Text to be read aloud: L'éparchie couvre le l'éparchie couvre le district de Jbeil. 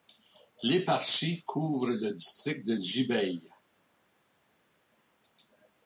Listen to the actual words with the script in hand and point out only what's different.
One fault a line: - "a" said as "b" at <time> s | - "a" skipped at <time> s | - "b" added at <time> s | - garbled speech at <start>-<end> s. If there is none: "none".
- "l'éparchie couvre le" skipped at 2.1 s